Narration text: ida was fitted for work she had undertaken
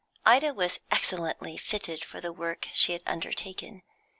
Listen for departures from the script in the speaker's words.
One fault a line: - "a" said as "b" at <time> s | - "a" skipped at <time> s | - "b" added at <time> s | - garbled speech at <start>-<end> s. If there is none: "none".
- "excellently" added at 0.9 s
- "the" added at 2.2 s